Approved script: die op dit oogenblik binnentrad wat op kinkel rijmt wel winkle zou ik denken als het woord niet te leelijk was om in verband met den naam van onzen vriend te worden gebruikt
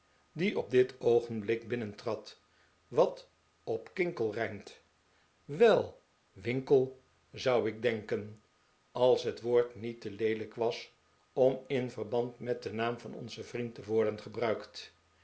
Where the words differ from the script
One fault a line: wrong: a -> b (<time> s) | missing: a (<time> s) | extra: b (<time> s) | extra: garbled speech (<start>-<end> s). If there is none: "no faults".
no faults